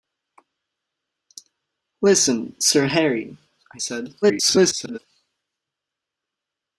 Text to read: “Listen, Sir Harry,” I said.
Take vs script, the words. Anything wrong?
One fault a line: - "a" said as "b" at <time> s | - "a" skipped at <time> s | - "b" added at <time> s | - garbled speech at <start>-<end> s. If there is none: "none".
- garbled speech at 4.2-5.0 s